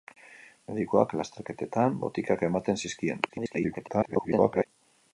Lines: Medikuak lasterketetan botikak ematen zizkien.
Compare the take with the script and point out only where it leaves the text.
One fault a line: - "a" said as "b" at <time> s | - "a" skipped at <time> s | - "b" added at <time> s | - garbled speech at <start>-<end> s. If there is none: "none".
- garbled speech at 3.3-4.7 s